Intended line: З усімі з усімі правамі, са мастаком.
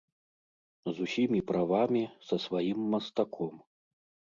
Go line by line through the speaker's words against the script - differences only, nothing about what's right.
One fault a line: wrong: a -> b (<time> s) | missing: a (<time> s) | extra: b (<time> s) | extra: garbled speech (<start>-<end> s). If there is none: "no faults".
missing: з усімі (1.4 s)
extra: сваім (2.5 s)